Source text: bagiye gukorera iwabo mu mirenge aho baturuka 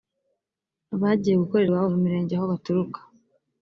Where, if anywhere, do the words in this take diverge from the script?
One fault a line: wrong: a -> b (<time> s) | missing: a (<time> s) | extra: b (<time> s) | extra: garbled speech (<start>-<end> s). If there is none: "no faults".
no faults